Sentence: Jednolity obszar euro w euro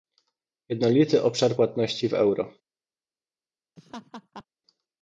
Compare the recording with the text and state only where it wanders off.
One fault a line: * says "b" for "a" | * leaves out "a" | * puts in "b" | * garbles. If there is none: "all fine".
* says "płatności" for "euro"